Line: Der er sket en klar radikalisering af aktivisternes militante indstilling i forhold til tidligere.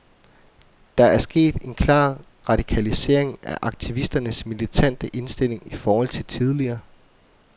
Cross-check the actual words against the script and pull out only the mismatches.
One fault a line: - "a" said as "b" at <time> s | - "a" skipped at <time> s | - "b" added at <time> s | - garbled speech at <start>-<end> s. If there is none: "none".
none